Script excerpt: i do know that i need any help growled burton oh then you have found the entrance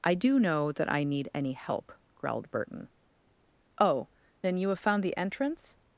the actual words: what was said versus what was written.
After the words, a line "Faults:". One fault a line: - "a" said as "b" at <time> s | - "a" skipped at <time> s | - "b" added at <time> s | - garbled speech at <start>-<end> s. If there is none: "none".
i do know that i need any help growled burton oh then you have found the entrance
Faults:
none